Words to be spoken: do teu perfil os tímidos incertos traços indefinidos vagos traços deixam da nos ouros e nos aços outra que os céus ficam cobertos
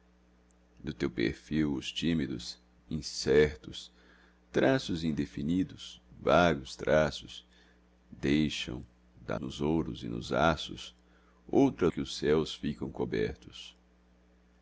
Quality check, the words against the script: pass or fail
pass